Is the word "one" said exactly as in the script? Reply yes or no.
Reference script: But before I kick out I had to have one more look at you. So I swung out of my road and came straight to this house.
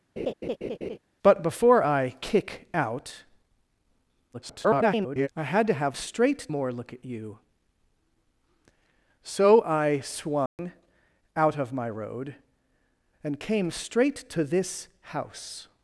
no